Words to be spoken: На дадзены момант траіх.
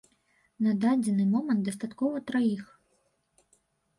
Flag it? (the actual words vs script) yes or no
yes